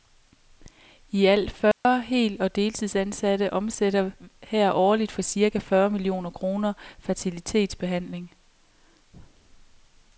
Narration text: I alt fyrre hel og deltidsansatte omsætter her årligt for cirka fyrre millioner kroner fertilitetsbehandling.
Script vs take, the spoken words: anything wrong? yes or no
no